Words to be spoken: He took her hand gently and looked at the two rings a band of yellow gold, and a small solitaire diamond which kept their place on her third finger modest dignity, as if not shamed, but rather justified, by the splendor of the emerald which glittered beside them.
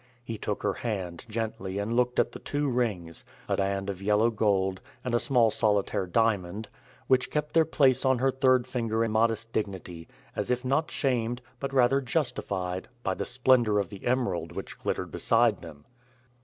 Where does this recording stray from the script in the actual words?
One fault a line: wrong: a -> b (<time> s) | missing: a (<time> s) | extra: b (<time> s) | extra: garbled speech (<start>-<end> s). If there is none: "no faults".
no faults